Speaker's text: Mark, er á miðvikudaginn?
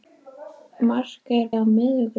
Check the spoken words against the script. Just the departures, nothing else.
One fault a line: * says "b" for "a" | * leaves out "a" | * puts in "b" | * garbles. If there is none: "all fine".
all fine